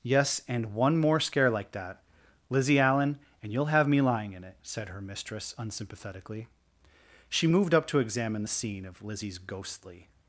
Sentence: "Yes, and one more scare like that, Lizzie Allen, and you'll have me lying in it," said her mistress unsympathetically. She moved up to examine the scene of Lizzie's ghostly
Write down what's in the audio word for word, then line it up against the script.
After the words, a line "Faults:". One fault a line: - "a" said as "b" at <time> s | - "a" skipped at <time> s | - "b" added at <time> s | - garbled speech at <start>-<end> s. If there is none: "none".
"Yes, and one more scare like that, Lizzie Allen, and you'll have me lying in it," said her mistress unsympathetically. She moved up to examine the scene of Lizzie's ghostly
Faults:
none